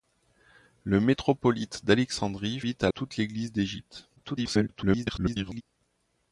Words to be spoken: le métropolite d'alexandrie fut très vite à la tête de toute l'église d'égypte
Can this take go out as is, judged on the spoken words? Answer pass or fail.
fail